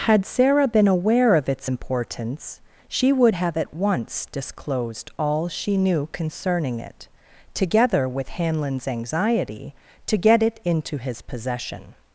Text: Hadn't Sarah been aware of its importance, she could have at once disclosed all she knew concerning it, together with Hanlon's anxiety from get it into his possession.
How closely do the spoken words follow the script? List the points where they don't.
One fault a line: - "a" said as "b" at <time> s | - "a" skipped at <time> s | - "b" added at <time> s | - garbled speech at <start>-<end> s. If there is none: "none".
- "Hadn't" said as "Had" at 0.1 s
- "could" said as "would" at 3.1 s
- "from" said as "to" at 10.1 s